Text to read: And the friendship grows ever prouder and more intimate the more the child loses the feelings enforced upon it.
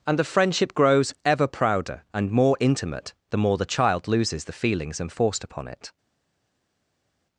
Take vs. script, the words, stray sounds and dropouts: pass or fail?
pass